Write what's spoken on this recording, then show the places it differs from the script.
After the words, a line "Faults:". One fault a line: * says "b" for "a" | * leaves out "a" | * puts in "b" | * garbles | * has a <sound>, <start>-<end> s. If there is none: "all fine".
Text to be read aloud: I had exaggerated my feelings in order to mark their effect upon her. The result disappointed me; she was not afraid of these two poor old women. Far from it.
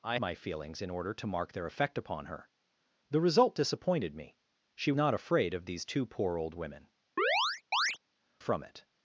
I my feelings in order to mark their effect upon her. The result disappointed me; she not afraid of these two poor old women. From it.
Faults:
* leaves out "had exaggerated"
* leaves out "was"
* leaves out "Far"
* has a chirp, 7.2-8.0 s